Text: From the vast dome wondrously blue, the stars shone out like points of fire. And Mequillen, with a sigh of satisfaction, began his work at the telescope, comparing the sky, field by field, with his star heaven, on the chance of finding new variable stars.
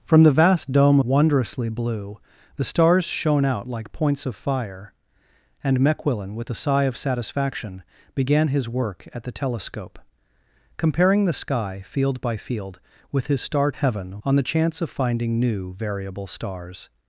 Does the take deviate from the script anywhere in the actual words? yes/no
no